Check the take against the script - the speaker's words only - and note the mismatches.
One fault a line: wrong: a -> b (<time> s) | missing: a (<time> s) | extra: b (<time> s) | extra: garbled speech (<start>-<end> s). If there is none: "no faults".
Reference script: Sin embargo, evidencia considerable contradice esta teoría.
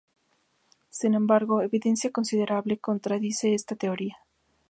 no faults